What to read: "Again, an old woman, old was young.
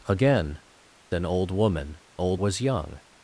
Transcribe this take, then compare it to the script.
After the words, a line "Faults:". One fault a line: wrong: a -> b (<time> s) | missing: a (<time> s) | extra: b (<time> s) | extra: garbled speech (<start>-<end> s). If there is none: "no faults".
"Again, an old woman, old was young.
Faults:
no faults